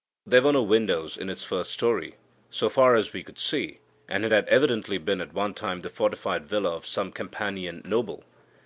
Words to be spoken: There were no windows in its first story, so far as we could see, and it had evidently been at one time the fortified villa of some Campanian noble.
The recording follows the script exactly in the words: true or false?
true